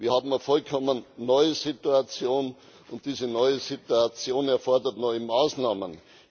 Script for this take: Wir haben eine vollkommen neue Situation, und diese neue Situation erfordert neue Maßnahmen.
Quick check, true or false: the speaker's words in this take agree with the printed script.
true